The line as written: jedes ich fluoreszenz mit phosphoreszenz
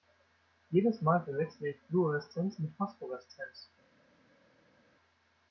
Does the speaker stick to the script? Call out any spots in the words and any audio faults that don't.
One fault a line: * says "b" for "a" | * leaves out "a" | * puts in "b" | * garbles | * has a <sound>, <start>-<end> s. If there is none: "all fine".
* puts in "mal verwechsle"